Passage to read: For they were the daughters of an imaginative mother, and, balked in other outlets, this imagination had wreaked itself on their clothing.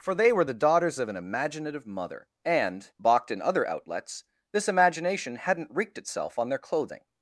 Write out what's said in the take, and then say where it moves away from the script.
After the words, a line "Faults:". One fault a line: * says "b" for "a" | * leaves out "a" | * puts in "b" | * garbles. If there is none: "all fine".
For they were the daughters of an imaginative mother, and, balked in other outlets, this imagination hadn't wreaked itself on their clothing.
Faults:
* says "hadn't" for "had"